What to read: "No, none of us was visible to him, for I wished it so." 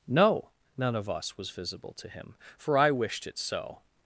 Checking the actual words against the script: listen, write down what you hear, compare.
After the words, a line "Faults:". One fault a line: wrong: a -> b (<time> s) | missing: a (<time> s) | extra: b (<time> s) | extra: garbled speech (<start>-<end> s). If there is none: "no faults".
"No, none of us was visible to him, for I wished it so."
Faults:
no faults